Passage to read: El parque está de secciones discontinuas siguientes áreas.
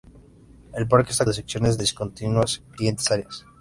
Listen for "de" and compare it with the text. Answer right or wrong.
right